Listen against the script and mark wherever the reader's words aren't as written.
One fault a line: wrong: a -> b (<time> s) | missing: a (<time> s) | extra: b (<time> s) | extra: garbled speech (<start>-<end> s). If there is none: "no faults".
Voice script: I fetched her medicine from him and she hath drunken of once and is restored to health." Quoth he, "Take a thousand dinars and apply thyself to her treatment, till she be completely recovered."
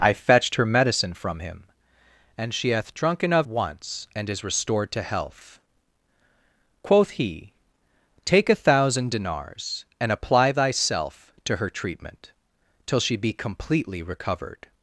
no faults